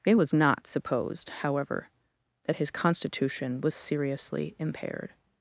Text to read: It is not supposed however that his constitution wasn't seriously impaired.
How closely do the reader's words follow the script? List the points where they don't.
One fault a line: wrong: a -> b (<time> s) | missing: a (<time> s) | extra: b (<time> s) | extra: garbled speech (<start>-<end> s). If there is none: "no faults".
wrong: is -> was (0.1 s)
wrong: wasn't -> was (3.6 s)